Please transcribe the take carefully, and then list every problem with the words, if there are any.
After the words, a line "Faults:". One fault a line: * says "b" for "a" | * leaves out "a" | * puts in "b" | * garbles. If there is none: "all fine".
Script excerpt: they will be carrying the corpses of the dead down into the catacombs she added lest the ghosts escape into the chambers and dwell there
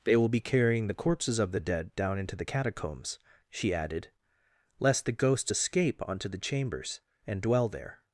they will be carrying the corpses of the dead down into the catacombs she added lest the ghosts escape onto the chambers and dwell there
Faults:
* says "onto" for "into"